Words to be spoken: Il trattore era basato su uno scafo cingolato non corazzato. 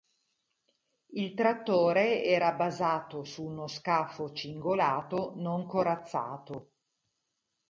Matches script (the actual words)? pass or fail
pass